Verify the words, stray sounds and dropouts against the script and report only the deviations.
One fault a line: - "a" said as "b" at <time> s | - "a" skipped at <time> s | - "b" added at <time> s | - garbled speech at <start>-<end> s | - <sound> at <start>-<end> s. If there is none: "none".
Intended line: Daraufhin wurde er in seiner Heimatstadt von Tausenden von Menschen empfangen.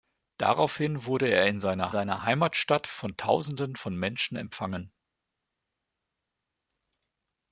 - "seiner" added at 1.9 s